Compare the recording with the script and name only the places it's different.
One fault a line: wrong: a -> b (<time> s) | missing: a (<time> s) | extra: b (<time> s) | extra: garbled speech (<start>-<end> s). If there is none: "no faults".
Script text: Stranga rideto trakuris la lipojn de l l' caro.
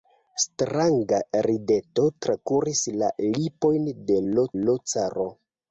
no faults